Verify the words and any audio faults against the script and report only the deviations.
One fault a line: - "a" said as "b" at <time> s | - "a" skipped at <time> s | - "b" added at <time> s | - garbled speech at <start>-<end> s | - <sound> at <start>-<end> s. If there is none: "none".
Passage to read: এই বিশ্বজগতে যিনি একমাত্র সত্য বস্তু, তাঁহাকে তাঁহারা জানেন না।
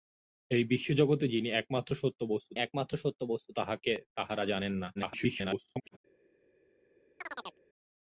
- "একমাত্র সত্য বস্তু" added at 2.6 s
- garbled speech at 4.9-6.0 s
- chirp at 7.2-7.6 s